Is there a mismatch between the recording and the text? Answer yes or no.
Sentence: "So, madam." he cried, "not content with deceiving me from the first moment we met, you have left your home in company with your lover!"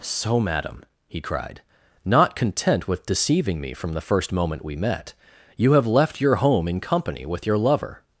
no